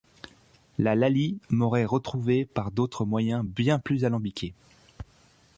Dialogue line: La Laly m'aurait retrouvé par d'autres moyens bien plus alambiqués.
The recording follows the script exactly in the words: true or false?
true